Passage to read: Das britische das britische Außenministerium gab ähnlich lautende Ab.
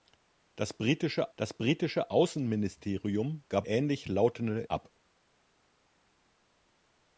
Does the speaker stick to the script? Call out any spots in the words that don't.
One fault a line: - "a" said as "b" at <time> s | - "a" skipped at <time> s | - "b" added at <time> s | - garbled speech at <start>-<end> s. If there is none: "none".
none